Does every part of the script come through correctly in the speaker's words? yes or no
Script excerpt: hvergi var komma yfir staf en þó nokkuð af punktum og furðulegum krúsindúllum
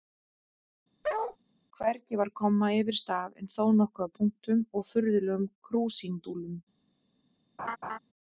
yes